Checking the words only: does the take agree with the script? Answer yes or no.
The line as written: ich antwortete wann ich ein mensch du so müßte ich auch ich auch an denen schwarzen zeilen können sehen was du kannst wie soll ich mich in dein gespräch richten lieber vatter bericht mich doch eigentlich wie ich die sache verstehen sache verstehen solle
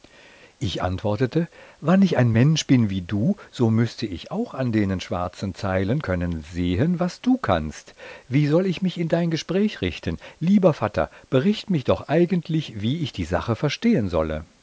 no